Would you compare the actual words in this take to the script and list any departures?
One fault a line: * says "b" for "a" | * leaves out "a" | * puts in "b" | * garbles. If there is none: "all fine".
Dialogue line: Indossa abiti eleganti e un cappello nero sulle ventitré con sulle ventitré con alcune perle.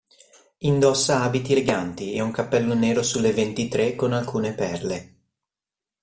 * leaves out "sulle ventitré con"